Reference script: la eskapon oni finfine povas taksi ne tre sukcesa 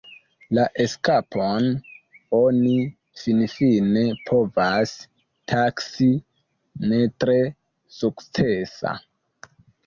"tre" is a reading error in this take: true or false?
false